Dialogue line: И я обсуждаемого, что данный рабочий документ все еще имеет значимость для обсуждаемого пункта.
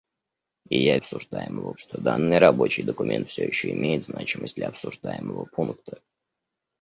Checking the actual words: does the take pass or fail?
pass